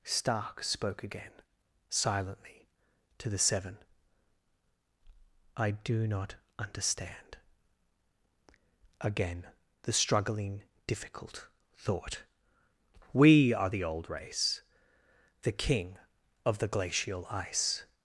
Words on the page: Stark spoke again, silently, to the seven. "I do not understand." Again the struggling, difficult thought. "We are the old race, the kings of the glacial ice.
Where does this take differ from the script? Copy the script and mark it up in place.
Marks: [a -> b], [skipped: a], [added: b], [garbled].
Stark spoke again, silently, to the seven. "I do not understand." Again the struggling, difficult thought. "We are the old race, the [kings -> king] of the glacial ice.